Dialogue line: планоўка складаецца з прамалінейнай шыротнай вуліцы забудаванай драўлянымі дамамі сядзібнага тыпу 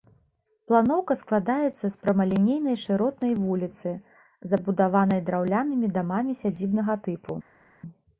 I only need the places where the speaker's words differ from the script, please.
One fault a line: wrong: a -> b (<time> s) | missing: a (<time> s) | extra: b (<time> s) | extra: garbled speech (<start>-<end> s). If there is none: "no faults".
no faults